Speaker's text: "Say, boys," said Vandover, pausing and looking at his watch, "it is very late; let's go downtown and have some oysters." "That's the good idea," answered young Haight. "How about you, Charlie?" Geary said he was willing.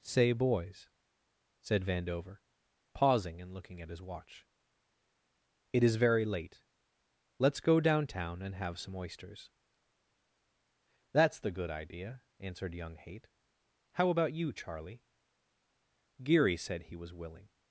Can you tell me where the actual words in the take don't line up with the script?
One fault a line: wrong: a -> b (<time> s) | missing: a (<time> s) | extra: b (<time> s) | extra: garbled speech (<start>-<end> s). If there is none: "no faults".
no faults